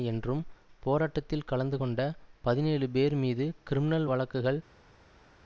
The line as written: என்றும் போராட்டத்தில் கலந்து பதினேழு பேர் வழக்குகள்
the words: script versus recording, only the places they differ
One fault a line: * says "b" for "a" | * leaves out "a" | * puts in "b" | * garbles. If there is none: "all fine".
* puts in "கொண்ட"
* puts in "மீது கிரிமினல்"